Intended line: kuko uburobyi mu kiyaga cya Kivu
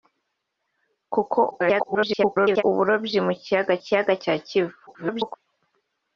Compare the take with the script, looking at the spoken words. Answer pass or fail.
fail